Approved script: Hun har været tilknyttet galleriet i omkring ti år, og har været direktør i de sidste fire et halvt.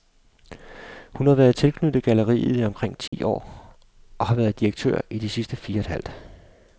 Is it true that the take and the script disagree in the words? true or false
false